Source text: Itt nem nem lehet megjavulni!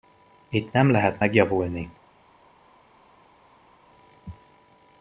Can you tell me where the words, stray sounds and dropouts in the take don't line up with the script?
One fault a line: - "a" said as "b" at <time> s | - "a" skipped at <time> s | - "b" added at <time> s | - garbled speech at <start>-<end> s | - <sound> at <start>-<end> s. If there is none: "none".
- "nem" skipped at 0.9 s